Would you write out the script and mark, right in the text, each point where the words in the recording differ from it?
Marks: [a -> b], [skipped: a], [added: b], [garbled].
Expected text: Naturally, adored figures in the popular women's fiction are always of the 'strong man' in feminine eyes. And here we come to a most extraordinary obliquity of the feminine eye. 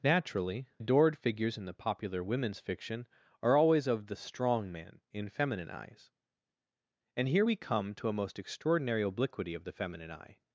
Naturally, adored figures in the popular women's fiction are always of the 'strong man' in feminine eyes. And here we come to a most extraordinary obliquity of the feminine eye.